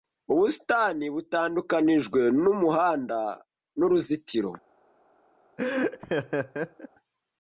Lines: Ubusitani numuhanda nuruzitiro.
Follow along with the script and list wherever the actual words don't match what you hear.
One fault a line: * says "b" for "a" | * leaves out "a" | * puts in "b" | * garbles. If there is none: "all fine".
* puts in "butandukanijwe"